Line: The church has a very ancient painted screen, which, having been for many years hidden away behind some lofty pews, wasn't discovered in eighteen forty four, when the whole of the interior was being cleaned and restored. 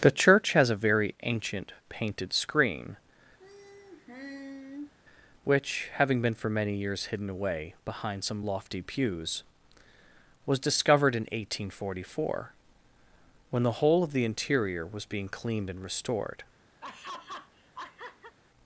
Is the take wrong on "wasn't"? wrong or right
wrong